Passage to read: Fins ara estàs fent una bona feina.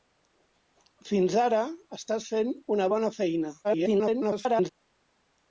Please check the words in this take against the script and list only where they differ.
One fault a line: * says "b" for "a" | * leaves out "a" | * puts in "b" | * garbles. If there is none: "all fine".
* garbles